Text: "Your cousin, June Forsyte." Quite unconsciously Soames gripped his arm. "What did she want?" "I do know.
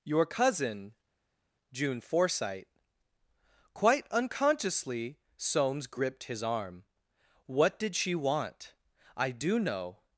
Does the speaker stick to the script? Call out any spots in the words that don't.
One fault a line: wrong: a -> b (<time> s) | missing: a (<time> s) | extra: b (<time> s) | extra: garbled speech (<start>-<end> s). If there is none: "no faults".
no faults